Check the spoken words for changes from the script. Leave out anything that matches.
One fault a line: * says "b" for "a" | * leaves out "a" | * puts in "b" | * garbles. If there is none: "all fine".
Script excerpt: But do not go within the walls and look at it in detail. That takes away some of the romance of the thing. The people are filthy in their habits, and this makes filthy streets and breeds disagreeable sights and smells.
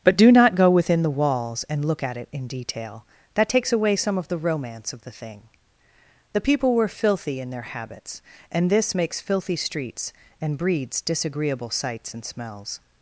* says "were" for "are"